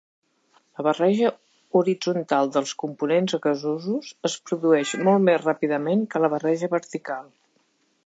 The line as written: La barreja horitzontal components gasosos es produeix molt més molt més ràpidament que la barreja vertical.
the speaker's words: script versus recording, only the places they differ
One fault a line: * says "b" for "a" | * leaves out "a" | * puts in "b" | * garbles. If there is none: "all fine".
* puts in "dels"
* leaves out "molt més"